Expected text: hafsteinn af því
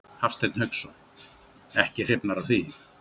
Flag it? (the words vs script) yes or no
yes